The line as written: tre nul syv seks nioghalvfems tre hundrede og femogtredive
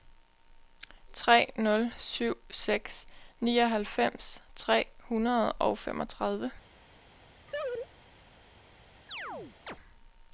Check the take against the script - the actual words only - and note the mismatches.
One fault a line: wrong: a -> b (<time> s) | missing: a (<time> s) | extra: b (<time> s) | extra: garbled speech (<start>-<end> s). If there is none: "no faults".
no faults